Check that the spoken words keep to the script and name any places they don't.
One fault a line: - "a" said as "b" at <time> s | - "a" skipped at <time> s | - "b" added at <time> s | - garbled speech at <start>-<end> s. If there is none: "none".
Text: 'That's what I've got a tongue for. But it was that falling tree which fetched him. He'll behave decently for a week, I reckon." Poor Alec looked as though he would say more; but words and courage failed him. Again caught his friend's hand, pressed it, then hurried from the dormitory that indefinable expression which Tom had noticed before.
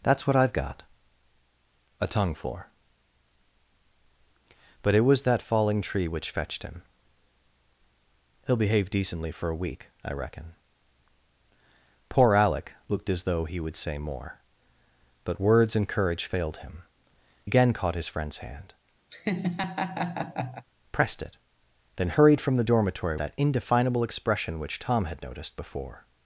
none